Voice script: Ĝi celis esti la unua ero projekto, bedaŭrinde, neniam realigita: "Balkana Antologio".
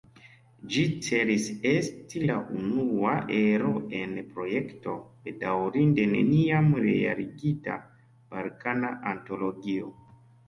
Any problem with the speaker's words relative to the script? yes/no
yes